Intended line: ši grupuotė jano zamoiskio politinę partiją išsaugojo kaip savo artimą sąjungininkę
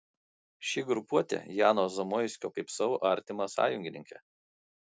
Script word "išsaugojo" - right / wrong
wrong